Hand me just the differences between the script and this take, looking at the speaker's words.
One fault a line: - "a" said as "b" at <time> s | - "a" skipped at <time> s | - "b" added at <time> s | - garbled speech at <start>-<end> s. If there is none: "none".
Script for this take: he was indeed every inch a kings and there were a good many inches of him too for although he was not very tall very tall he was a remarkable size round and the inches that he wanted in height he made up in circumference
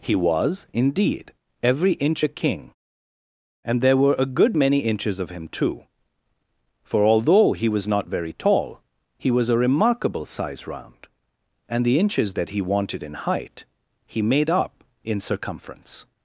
- "kings" said as "king" at 2.3 s
- "very tall" skipped at 8.8 s